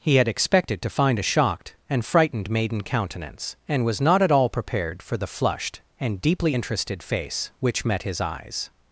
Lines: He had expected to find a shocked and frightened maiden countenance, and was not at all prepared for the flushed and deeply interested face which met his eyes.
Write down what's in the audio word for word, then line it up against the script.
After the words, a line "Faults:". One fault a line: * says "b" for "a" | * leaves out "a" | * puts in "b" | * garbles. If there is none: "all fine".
He had expected to find a shocked and frightened maiden countenance, and was not at all prepared for the flushed and deeply interested face which met his eyes.
Faults:
all fine